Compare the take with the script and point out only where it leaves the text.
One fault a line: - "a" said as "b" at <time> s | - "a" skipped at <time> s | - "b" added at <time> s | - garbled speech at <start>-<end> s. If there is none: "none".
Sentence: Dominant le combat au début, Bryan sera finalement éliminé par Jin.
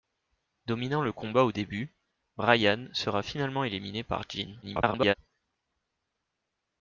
- garbled speech at 4.6-5.1 s